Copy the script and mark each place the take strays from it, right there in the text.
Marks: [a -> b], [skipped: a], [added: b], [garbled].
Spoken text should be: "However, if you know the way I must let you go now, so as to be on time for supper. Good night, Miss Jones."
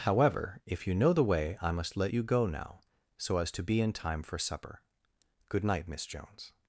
"However, if you know the way I must let you go now, so as to be [on -> in] time for supper. Good night, Miss Jones."